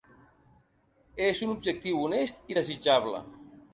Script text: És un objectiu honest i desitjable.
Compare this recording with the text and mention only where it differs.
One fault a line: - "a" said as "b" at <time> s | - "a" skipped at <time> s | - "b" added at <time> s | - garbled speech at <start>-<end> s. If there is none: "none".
none